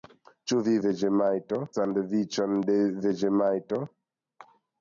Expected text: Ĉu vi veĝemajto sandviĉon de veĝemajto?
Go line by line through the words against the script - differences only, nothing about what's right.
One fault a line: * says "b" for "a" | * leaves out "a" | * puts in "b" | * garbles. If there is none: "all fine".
all fine